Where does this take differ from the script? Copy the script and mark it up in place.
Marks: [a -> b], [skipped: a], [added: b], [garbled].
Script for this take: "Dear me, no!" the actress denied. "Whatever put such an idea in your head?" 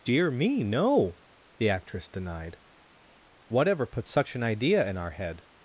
"Dear me, no!" the actress denied. "Whatever put such an idea in [your -> our] head?"